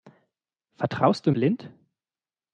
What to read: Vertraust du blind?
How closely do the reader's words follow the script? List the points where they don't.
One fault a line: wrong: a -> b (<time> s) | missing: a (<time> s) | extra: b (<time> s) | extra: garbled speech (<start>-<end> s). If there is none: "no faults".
no faults